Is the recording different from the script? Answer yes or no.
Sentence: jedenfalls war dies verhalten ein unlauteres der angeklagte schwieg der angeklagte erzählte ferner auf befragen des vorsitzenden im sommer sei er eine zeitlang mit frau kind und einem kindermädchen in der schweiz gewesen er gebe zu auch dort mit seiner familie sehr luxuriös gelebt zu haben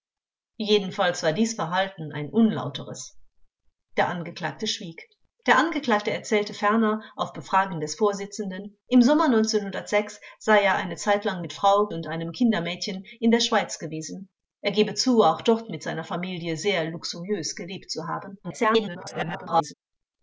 yes